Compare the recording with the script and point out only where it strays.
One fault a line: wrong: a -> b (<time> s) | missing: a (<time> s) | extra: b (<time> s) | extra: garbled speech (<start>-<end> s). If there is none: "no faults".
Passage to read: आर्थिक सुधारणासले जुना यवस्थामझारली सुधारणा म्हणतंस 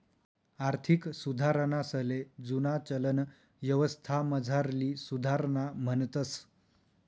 extra: चलन (2.8 s)